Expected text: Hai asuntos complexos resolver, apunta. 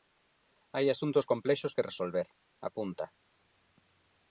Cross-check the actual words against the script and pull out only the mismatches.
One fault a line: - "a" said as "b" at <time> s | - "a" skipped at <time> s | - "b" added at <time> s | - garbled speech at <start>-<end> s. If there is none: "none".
- "que" added at 1.8 s